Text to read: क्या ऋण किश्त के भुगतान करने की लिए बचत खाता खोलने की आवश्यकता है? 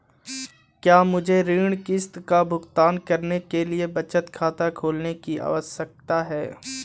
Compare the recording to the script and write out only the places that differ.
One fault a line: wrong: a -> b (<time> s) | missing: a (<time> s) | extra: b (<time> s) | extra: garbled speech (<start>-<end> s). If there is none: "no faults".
extra: मुझे (1.0 s)
wrong: के -> का (2.3 s)
wrong: की -> के (3.4 s)